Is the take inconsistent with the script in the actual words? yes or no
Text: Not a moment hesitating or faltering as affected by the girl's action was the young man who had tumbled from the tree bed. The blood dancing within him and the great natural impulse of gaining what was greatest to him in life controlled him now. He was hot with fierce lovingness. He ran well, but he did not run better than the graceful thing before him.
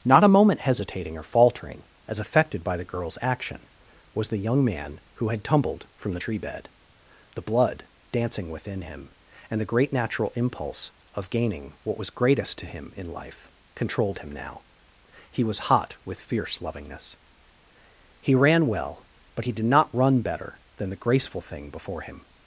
no